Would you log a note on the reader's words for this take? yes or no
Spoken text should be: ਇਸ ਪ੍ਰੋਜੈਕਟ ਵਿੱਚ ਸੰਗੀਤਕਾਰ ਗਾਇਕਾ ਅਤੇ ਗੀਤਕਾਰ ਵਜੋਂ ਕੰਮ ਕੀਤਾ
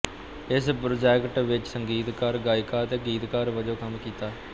no